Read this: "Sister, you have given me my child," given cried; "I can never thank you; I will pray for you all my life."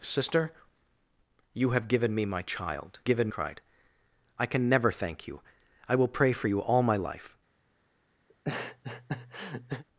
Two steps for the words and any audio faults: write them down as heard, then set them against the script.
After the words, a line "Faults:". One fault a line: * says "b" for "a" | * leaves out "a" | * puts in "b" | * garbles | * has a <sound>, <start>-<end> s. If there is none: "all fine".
"Sister, you have given me my child," given cried; "I can never thank you; I will pray for you all my life."
Faults:
* has a laugh, 8.3-9.8 s